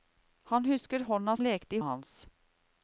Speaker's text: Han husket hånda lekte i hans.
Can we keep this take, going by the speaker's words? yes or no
yes